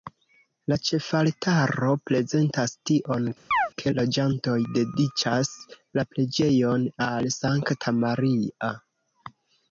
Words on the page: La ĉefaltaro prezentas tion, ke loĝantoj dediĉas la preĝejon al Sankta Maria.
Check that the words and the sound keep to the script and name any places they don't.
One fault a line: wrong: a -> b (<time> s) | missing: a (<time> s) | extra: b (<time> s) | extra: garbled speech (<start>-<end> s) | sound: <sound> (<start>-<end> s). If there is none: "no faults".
sound: chirp (3.5-3.7 s)